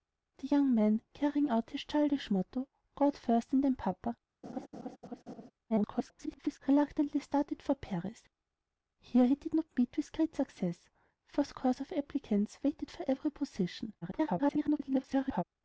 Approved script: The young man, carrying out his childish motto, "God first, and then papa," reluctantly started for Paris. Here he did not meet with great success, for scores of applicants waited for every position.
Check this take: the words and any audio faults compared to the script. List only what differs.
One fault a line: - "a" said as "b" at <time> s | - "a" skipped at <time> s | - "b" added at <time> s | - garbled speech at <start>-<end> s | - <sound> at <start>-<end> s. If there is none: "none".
- laugh at 4.4-5.5 s
- garbled speech at 5.7-6.6 s
- garbled speech at 14.0-15.4 s